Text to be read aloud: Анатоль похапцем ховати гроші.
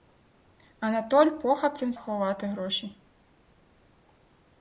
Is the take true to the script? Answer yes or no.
yes